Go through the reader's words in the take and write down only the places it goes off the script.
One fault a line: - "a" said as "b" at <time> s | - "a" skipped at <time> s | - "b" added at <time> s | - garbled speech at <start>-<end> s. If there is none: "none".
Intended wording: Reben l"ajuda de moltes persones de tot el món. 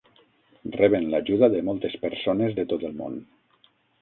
none